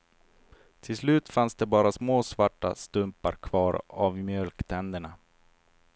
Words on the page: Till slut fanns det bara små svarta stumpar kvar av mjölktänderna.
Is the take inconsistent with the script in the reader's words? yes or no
no